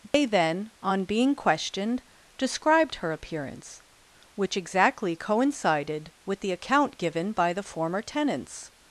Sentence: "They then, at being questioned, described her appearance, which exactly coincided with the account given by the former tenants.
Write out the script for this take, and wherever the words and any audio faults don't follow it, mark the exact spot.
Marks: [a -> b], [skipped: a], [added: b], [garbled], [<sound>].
"They [dropout] then, [at -> on] being questioned, described her appearance, which exactly coincided with the account given by the former tenants.